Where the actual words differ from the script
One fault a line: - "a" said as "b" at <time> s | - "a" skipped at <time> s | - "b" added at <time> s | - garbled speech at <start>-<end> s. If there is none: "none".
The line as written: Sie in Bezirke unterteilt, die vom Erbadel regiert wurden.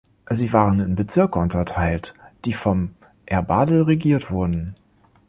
- "waren" added at 0.5 s